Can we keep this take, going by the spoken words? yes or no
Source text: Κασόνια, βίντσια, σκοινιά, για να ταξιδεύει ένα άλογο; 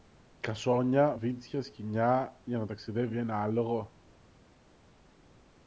yes